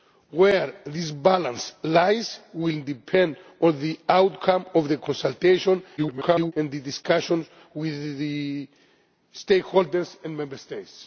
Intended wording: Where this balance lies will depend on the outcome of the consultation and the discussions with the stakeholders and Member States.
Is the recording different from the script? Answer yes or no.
yes